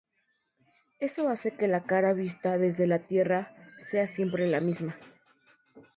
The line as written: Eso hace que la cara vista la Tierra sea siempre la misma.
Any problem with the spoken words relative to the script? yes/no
yes